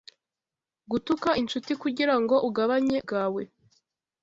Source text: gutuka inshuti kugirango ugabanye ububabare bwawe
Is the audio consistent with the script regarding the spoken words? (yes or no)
no